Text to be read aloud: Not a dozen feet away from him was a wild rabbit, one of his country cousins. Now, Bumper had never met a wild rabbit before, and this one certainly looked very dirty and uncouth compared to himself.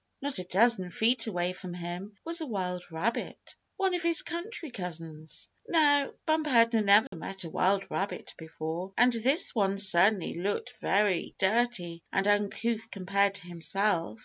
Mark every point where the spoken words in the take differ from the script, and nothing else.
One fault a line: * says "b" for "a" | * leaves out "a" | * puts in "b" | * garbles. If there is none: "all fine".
all fine